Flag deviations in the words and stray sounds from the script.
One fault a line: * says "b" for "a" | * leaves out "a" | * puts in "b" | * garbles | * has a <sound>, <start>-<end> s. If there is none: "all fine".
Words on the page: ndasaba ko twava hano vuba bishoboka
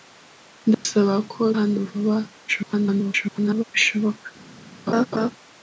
* has a dropout, 0.7-0.8 s
* leaves out "twava"
* garbles
* has a laugh, 4.9-5.3 s